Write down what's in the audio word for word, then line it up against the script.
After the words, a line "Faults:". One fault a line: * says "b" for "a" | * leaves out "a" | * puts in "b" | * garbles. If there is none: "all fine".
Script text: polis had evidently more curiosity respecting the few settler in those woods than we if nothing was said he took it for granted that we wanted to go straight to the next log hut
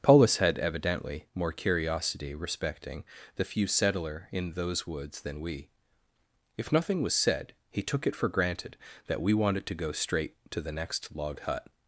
polis had evidently more curiosity respecting the few settler in those woods than we if nothing was said he took it for granted that we wanted to go straight to the next log hut
Faults:
all fine